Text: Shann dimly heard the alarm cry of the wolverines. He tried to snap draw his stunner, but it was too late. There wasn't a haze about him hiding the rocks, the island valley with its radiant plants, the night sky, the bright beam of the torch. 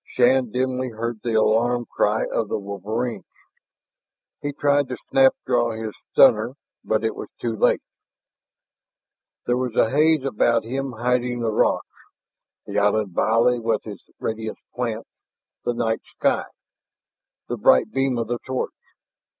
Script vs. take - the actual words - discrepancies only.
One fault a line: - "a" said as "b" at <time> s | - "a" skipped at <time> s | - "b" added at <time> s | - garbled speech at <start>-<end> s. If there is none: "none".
- "wasn't" said as "was" at 9.6 s